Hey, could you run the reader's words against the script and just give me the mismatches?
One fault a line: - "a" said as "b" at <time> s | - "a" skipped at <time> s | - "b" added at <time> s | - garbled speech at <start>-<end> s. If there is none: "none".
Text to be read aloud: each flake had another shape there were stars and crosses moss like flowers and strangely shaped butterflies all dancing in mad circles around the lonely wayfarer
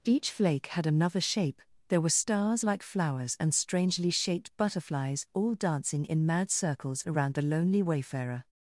- "and crosses moss" skipped at 2.6 s